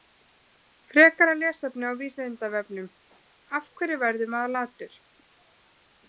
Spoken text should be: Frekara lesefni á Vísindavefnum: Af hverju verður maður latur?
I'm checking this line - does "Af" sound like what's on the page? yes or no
yes